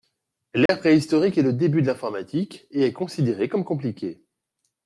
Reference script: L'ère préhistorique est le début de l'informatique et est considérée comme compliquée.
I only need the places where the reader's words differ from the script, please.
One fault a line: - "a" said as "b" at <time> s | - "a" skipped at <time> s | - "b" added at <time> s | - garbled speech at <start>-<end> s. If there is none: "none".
none